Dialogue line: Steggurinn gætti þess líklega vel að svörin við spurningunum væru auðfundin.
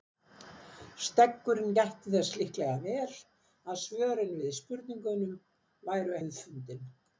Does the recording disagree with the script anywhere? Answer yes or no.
no